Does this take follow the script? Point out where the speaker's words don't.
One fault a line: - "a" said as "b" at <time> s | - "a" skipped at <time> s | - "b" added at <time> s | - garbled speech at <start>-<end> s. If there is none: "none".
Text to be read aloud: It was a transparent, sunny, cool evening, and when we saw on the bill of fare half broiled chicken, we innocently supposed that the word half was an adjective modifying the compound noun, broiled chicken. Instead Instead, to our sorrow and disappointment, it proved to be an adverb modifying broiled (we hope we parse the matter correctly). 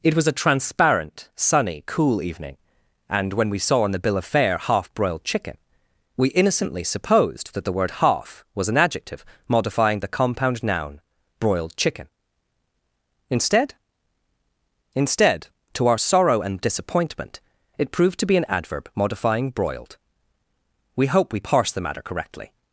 none